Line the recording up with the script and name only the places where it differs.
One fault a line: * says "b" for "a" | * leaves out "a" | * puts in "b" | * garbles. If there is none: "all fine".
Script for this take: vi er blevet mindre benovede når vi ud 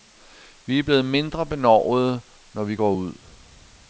* puts in "går"